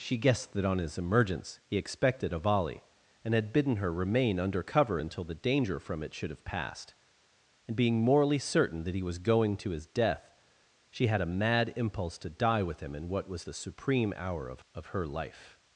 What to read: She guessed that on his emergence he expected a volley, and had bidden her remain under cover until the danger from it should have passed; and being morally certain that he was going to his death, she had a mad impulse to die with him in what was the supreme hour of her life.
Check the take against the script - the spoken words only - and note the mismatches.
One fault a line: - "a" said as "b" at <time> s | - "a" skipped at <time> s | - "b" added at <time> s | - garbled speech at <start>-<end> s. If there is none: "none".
- "of" added at 14.7 s